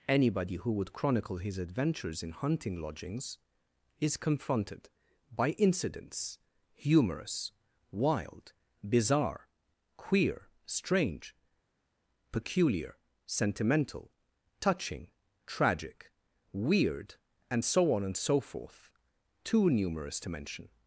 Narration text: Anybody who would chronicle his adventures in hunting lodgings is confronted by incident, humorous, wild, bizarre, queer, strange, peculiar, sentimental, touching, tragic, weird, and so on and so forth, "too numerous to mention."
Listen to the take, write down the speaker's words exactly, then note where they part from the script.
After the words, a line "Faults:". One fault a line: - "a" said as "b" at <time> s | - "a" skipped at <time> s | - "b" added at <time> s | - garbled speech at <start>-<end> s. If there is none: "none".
Anybody who would chronicle his adventures in hunting lodgings is confronted by incidents, humorous, wild, bizarre, queer, strange, peculiar, sentimental, touching, tragic, weird, and so on and so forth, "too numerous to mention."
Faults:
- "incident" said as "incidents" at 5.5 s